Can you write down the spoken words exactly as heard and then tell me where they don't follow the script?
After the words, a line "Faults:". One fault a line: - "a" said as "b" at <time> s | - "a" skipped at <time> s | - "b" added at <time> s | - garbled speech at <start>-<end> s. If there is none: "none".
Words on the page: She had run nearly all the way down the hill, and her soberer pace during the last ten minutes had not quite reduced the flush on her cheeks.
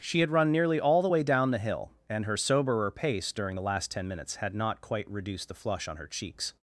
She had run nearly all the way down the hill, and her soberer pace during the last ten minutes had not quite reduced the flush on her cheeks.
Faults:
none